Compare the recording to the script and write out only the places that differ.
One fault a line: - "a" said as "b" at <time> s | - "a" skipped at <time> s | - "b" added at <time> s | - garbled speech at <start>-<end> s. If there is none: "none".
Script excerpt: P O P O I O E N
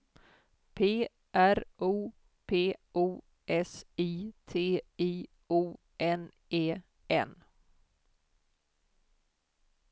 - "R" added at 1.3 s
- "S" added at 3.5 s
- "T I" added at 4.5 s
- "N" added at 6.0 s